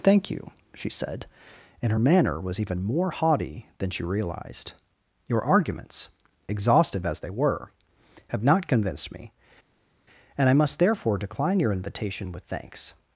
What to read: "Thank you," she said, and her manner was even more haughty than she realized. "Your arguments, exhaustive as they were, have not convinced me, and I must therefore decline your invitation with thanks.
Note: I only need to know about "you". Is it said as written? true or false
true